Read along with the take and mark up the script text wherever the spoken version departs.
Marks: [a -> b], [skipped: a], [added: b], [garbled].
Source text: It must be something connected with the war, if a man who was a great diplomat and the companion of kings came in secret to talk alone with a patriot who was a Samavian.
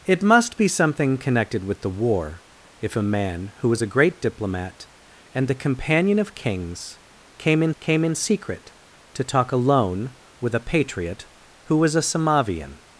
It must be something connected with the war, if a man who was a great diplomat and the companion of kings came in [added: came in] secret to talk alone with a patriot who was a Samavian.